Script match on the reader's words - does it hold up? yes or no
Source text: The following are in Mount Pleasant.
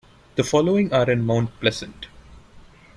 yes